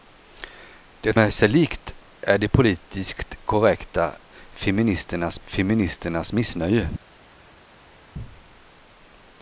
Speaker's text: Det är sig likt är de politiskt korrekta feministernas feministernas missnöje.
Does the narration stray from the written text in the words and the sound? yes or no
no